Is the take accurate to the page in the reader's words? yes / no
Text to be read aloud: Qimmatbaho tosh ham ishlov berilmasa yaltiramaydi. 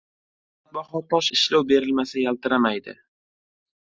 no